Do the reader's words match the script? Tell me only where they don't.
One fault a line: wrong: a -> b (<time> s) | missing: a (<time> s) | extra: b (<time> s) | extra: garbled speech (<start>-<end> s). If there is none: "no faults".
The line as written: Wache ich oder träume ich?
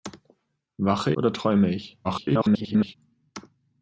missing: ich (1.1 s)
extra: garbled speech (2.0-3.0 s)